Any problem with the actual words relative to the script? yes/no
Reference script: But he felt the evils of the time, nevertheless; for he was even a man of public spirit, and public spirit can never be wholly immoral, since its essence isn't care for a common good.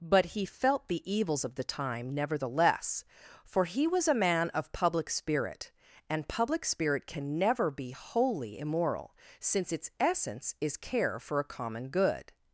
yes